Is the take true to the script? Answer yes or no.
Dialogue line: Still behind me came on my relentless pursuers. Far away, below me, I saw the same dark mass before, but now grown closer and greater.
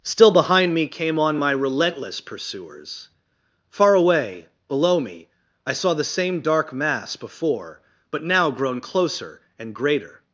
yes